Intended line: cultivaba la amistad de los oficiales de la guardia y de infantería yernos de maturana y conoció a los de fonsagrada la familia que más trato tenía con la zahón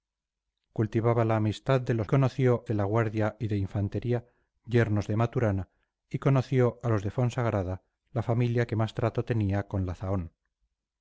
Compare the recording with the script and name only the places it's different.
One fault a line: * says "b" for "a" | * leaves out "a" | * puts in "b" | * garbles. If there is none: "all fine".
* says "conoció" for "oficiales"